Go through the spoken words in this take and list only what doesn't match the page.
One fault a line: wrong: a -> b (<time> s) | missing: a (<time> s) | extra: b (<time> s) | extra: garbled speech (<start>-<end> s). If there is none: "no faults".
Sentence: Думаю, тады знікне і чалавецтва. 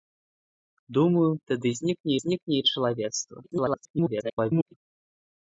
extra: знікне (2.2 s)
extra: garbled speech (3.4-4.7 s)